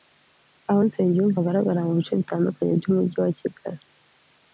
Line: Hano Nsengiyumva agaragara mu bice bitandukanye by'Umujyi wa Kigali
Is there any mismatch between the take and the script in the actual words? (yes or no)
yes